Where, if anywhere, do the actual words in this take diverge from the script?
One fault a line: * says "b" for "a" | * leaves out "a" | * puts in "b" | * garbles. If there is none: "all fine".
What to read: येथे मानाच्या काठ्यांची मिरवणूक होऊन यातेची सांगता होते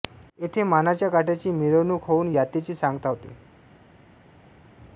all fine